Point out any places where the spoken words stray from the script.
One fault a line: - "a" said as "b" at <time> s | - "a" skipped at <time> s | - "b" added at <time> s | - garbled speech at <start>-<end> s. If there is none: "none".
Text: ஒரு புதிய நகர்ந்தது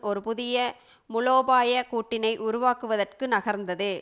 - "மூலோபாய கூட்டினை உருவாக்குவதற்கு" added at 1.1 s